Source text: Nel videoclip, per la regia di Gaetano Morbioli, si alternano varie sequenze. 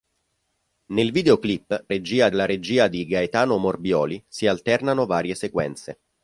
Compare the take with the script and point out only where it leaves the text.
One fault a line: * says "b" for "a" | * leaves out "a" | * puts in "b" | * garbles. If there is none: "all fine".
* says "regia" for "per"